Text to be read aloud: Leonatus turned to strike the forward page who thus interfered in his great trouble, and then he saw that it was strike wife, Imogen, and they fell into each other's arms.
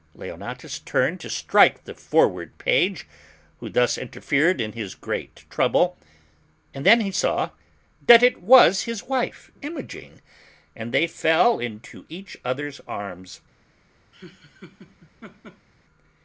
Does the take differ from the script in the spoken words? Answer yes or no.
yes